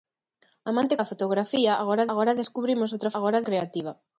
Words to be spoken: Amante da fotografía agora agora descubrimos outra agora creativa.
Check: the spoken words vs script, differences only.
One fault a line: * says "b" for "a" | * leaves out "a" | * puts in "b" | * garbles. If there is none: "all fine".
all fine